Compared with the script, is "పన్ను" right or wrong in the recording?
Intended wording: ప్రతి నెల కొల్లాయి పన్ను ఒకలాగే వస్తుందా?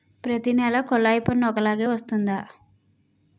right